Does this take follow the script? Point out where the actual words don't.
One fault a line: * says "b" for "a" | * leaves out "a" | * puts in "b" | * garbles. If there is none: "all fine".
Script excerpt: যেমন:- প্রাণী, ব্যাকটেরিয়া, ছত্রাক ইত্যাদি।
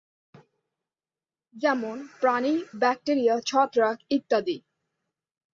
all fine